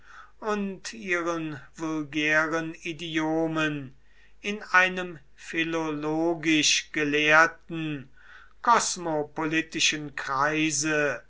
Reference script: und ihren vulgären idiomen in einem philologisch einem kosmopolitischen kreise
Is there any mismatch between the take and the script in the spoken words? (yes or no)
yes